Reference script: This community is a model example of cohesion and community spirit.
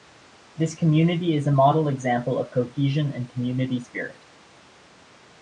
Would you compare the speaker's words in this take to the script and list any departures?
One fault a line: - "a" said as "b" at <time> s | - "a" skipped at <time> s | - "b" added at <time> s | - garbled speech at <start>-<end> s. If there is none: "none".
none